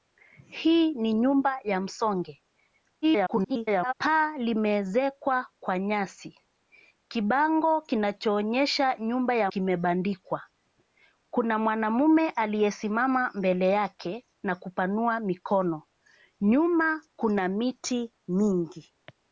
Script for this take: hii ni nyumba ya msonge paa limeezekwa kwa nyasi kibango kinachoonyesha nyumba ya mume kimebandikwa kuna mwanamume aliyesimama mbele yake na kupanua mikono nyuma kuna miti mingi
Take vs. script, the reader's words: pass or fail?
fail